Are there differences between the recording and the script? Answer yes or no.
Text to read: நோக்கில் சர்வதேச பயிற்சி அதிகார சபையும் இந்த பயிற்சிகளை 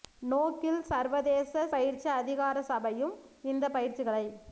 no